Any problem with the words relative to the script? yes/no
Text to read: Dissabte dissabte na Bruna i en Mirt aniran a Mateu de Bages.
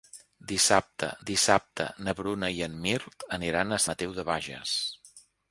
no